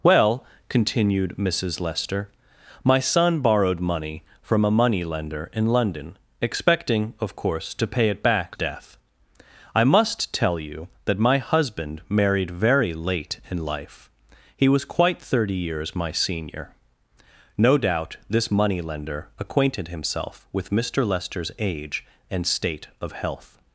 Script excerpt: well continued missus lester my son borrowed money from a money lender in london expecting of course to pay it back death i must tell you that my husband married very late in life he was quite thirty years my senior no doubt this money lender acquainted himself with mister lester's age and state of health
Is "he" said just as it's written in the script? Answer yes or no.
yes